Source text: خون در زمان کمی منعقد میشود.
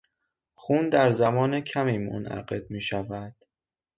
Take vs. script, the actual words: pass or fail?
pass